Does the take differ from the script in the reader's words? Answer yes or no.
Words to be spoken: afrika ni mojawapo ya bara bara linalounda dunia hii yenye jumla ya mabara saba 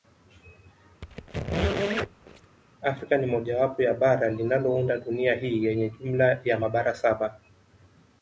yes